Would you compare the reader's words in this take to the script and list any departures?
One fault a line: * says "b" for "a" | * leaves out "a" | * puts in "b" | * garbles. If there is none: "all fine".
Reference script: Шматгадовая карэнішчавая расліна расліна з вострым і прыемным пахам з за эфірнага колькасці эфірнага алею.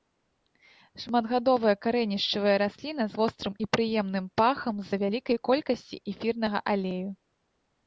* leaves out "расліна"
* says "вялікай" for "эфірнага"